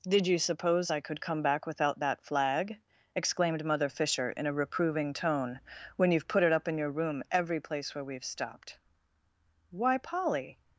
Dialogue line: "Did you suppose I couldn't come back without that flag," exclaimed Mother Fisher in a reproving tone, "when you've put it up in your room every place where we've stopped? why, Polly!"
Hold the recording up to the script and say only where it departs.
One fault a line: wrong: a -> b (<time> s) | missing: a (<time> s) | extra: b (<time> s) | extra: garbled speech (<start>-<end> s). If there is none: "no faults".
wrong: couldn't -> could (1.0 s)